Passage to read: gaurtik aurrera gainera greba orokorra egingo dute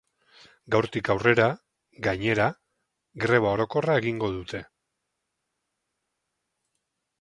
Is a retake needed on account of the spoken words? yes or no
no